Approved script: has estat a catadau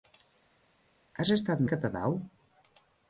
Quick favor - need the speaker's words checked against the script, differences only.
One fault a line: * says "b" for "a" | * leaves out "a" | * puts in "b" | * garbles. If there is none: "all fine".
all fine